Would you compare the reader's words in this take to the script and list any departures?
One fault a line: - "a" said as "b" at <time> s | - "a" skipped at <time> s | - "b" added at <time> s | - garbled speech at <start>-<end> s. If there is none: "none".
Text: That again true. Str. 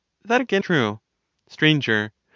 none